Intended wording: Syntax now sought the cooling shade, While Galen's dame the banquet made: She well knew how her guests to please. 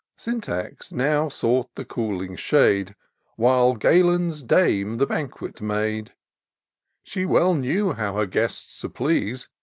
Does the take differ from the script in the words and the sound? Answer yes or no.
no